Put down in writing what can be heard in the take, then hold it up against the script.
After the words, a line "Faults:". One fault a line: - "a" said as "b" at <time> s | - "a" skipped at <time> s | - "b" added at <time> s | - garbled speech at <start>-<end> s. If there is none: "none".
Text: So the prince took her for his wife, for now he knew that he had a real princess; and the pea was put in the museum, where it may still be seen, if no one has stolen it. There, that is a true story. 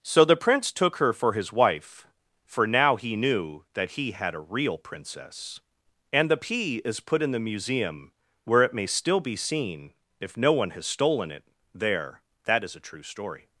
So the prince took her for his wife, for now he knew that he had a real princess; and the pea is put in the museum, where it may still be seen, if no one has stolen it. There, that is a true story.
Faults:
- "was" said as "is" at 6.8 s